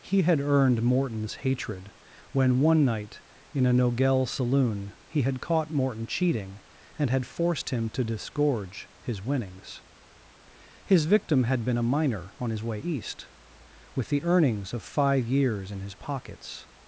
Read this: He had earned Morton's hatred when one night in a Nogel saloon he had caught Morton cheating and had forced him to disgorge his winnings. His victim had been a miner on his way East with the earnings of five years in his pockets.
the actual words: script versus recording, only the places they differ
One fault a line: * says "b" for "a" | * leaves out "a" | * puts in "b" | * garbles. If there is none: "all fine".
all fine